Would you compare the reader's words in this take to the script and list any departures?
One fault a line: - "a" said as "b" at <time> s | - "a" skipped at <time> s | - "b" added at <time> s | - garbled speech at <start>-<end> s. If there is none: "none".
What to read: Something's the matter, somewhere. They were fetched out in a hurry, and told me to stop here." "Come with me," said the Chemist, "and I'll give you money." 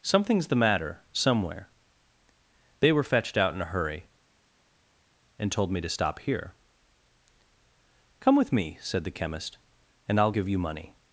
none